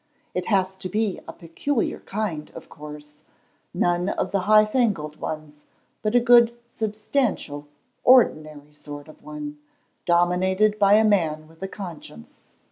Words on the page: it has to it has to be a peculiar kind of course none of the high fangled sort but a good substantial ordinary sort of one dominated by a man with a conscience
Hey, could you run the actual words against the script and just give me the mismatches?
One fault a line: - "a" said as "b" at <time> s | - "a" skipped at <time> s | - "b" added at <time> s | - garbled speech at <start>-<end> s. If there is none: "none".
- "it has to" skipped at 0.9 s
- "sort" said as "ones" at 5.2 s